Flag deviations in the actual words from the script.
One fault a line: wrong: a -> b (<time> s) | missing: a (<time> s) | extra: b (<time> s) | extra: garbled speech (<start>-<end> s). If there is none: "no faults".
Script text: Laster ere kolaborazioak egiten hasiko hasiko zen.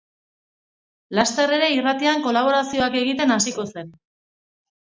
extra: irratian (1.7 s)
missing: hasiko (3.7 s)